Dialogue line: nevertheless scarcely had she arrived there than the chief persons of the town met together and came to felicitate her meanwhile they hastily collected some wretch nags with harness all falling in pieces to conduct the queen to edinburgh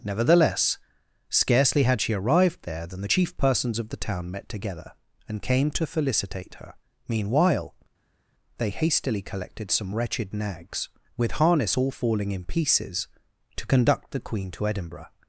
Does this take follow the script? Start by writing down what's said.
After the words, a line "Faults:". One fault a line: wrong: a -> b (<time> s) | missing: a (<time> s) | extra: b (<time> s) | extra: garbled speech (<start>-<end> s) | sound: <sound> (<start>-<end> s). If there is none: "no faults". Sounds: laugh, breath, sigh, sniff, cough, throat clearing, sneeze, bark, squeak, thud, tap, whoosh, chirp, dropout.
nevertheless scarcely had she arrived there than the chief persons of the town met together and came to felicitate her meanwhile they hastily collected some wretched nags with harness all falling in pieces to conduct the queen to edinburgh
Faults:
wrong: wretch -> wretched (9.9 s)